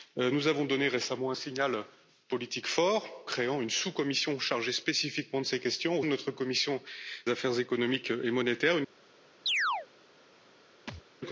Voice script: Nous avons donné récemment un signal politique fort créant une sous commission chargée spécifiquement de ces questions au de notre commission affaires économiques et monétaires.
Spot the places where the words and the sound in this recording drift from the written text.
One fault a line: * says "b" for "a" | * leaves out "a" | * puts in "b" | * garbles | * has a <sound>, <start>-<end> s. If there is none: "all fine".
* has a chirp, 9.5-9.9 s
* has a thud, 10.9-11.0 s